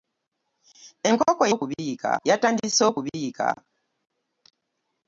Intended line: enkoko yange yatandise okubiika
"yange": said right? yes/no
no